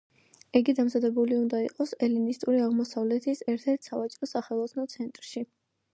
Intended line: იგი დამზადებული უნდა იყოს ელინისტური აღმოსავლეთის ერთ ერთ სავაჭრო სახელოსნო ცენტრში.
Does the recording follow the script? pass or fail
pass